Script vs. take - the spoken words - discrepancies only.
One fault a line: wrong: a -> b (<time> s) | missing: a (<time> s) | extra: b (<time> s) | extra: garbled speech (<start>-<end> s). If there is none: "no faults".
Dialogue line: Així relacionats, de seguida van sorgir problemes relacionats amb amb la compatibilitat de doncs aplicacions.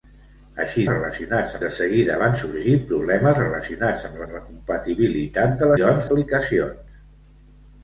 no faults